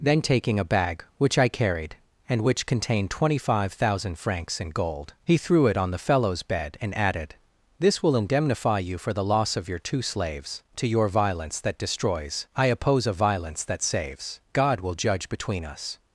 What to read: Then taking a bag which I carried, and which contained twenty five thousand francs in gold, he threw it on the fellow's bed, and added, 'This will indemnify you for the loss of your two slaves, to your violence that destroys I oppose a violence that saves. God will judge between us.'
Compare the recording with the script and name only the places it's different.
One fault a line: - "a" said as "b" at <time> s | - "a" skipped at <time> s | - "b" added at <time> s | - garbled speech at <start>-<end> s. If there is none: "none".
none